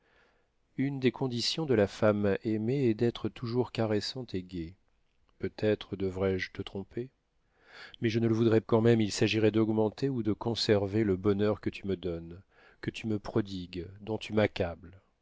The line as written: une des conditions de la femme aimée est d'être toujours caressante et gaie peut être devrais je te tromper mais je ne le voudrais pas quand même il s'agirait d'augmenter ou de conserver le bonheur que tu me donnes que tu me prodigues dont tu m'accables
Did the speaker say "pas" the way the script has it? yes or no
no